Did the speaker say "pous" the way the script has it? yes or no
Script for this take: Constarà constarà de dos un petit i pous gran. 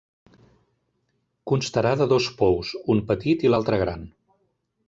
no